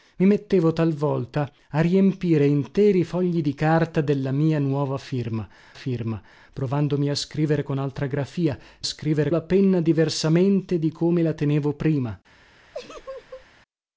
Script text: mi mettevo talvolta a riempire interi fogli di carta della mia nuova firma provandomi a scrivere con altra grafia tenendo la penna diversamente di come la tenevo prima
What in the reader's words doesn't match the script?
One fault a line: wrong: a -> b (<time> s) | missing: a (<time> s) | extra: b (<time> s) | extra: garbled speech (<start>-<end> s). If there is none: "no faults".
extra: firma (5.7 s)
wrong: tenendo -> scrivere (8.8 s)